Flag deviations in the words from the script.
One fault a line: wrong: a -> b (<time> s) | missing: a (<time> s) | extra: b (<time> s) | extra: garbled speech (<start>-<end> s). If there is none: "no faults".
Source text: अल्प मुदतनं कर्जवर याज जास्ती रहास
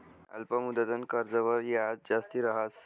no faults